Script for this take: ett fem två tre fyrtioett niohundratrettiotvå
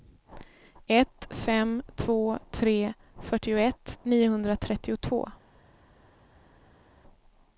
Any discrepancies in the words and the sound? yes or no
no